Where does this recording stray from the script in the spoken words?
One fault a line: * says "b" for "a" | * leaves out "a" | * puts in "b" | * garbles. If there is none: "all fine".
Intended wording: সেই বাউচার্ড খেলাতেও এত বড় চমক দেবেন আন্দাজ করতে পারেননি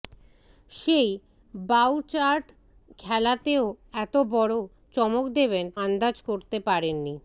all fine